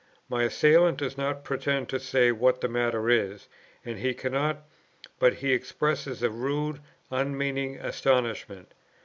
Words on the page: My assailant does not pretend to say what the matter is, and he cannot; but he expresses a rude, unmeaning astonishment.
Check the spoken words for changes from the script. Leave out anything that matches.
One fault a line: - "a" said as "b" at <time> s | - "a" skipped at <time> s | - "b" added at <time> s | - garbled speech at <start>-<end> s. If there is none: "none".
none